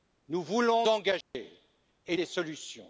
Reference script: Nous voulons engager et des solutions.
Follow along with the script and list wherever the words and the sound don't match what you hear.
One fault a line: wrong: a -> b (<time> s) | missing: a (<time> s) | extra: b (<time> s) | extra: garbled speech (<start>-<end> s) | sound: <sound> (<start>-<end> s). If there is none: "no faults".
sound: dropout (1.2-1.3 s)